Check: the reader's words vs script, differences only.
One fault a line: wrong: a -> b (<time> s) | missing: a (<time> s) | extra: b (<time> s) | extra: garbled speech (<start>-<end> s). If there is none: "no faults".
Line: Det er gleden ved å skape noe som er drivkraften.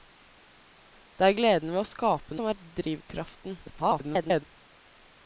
missing: noe (2.4 s)
extra: garbled speech (3.7-4.4 s)